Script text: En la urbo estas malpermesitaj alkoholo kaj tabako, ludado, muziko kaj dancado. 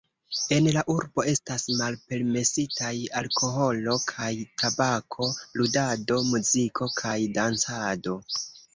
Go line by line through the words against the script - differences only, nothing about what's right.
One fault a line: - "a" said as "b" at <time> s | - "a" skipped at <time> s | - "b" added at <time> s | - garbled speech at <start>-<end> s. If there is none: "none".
none